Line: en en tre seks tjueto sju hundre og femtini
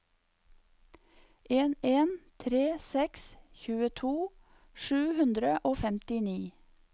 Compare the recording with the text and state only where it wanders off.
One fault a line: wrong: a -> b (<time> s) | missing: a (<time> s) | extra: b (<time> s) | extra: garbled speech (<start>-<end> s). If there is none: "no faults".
no faults